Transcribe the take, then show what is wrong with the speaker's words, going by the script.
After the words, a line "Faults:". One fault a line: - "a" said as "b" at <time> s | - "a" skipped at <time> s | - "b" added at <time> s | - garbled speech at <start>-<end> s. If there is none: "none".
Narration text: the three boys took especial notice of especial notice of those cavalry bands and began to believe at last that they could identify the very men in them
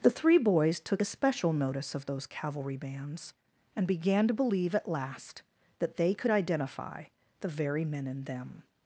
the three boys took especial notice of those cavalry bands and began to believe at last that they could identify the very men in them
Faults:
- "especial notice of" skipped at 2.1 s